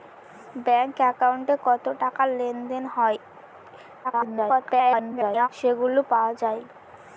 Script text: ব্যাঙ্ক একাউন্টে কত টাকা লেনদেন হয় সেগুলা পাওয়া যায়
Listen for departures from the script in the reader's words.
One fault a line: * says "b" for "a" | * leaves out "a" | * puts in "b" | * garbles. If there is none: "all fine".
* garbles